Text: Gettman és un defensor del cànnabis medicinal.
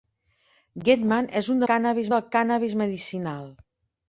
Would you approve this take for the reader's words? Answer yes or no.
no